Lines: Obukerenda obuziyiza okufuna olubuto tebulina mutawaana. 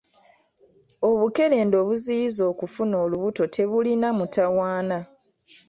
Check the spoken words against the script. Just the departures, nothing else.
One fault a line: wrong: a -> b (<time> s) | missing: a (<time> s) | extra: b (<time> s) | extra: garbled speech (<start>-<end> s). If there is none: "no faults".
no faults